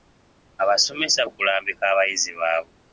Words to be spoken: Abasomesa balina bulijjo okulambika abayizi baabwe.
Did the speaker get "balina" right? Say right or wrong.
wrong